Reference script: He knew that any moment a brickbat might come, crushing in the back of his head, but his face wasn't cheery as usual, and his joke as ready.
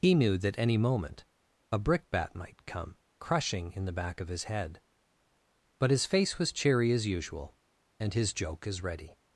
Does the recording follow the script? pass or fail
fail